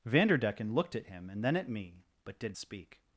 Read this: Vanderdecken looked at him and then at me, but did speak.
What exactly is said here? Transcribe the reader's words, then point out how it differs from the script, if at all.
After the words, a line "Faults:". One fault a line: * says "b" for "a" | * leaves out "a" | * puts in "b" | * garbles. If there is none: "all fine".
Vanderdecken looked at him and then at me, but did speak.
Faults:
all fine